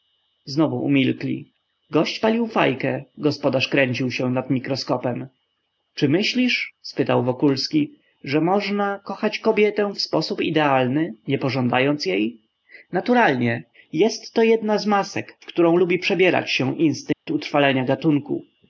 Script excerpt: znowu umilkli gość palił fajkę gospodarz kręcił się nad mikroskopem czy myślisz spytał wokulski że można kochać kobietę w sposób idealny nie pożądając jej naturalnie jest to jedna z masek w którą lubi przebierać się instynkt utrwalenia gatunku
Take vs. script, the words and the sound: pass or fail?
fail